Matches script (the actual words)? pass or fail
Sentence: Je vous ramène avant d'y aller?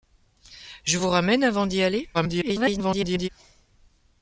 fail